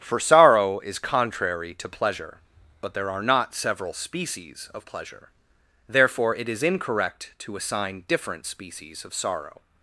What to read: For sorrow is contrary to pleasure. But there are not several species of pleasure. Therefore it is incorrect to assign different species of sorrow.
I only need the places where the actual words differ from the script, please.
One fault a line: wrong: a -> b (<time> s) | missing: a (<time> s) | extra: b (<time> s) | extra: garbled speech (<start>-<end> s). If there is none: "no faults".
no faults